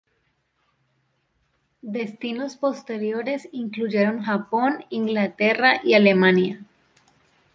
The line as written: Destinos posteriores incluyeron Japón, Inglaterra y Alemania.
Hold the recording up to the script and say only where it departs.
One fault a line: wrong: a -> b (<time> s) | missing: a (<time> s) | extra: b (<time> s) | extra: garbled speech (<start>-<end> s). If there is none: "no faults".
no faults